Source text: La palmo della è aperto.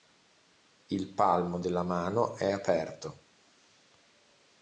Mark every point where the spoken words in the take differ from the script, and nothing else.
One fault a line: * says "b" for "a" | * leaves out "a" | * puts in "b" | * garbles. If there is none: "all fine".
* says "Il" for "La"
* puts in "mano"